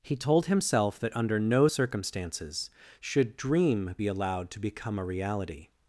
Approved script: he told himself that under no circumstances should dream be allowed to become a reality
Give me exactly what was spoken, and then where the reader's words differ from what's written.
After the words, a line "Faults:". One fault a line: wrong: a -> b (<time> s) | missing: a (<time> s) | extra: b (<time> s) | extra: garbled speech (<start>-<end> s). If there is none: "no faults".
he told himself that under no circumstances should dream be allowed to become a reality
Faults:
no faults